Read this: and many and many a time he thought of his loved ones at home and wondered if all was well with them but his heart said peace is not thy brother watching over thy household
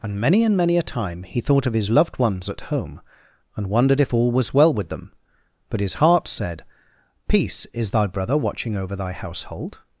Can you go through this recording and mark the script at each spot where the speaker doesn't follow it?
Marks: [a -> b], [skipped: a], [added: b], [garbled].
and many and many a time he thought of his loved ones at home and wondered if all was well with them but his heart said peace is [skipped: not] thy brother watching over thy household